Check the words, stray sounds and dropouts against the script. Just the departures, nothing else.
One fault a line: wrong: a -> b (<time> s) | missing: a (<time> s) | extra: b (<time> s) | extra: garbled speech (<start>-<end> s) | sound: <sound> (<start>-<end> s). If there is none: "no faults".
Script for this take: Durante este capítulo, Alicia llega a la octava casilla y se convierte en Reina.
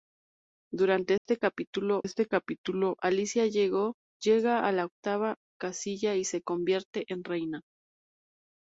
sound: dropout (1.2-1.3 s)
extra: este capítulo (2.0 s)